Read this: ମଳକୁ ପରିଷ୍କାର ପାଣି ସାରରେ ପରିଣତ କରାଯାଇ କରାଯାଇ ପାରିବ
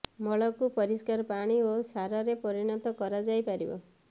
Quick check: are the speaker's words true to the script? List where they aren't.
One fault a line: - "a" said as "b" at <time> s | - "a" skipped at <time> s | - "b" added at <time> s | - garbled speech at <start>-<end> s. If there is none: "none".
- "ଓ" added at 1.6 s
- "କରାଯାଇ" skipped at 3.5 s